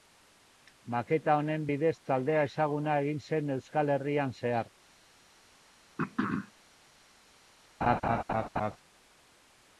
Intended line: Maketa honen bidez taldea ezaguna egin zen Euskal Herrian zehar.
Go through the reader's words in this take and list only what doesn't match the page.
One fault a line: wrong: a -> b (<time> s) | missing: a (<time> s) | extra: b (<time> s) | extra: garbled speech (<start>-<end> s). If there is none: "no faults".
no faults